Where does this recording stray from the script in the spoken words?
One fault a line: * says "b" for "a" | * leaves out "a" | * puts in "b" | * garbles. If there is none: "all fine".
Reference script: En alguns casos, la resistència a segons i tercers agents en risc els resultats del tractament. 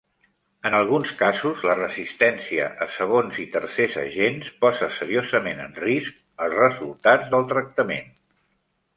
* puts in "posa seriosament"